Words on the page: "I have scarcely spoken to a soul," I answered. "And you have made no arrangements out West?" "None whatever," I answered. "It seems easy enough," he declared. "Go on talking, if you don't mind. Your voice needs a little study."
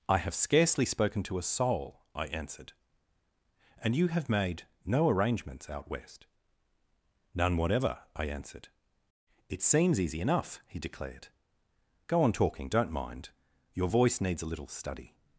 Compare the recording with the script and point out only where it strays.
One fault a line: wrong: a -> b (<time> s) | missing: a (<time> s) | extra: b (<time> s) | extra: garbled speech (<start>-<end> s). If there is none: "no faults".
missing: if you (12.7 s)